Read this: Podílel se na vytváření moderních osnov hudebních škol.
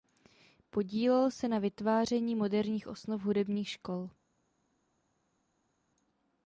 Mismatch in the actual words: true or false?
false